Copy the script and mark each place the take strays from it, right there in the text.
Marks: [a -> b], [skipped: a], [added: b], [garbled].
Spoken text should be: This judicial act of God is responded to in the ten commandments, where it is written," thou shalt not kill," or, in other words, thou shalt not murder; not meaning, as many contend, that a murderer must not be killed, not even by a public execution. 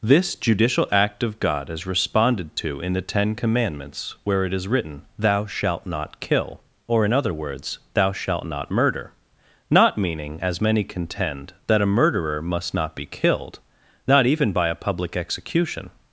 This judicial act of God is responded to in the ten commandments, where it is written," thou shalt not kill," or, in other words, thou shalt not murder; not meaning, as many contend, that a murderer must not be killed, not even by a public execution.